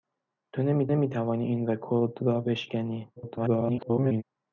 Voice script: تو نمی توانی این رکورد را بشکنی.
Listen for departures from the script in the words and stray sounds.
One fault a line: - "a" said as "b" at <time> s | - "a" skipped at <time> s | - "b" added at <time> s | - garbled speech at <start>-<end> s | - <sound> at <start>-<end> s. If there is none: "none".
- "نمی" added at 0.9 s
- garbled speech at 3.2-4.2 s